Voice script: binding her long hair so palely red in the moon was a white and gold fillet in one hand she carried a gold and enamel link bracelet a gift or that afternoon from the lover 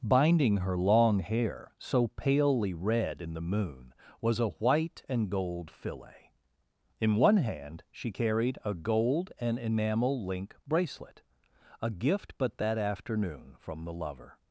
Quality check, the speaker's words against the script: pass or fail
fail